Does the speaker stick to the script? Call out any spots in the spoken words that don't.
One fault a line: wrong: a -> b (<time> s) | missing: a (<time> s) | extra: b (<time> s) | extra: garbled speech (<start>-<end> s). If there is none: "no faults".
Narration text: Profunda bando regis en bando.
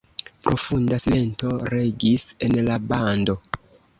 wrong: bando -> silento (1.0 s)
extra: la (2.7 s)